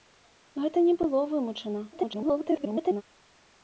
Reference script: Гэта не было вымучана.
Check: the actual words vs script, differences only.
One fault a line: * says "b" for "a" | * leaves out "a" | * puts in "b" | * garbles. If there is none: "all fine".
* garbles